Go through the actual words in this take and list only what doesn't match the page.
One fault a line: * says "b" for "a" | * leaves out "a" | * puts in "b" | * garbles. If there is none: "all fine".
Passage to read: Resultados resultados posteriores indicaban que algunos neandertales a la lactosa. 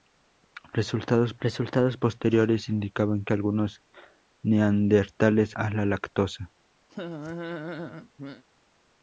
all fine